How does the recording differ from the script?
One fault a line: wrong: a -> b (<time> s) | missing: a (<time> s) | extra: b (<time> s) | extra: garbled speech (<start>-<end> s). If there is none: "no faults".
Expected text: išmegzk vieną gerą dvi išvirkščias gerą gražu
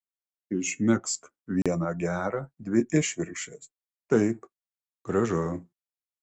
wrong: gerą -> taip (4.2 s)